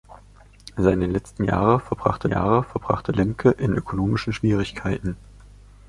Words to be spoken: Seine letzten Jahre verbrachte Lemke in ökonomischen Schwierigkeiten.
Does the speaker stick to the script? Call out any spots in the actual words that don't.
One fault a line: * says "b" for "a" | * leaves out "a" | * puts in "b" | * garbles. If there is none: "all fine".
* puts in "Jahre verbrachte"